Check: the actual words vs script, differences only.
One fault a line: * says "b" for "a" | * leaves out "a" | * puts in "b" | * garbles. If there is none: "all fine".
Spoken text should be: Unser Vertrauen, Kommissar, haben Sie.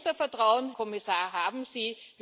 all fine